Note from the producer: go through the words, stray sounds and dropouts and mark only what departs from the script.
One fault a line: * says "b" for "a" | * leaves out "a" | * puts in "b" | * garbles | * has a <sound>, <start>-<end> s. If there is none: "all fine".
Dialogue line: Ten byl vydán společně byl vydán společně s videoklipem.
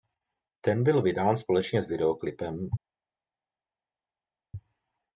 * leaves out "byl vydán společně"